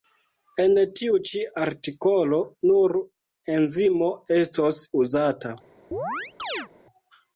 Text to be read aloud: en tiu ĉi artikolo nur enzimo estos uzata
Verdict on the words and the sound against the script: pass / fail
fail